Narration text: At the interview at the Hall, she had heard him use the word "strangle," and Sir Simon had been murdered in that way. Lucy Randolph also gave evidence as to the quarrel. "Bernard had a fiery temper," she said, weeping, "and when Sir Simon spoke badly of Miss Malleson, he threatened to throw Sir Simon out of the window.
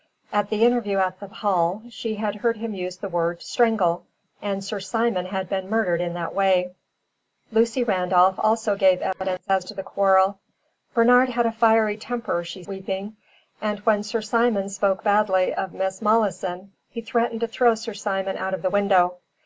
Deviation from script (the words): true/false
true